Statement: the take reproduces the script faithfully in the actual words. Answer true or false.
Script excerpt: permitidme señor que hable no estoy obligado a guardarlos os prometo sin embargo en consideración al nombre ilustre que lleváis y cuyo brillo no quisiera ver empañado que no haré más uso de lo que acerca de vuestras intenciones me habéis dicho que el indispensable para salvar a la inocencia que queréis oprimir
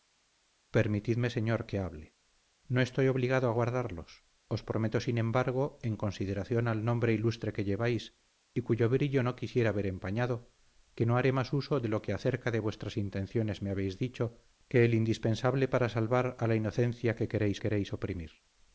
false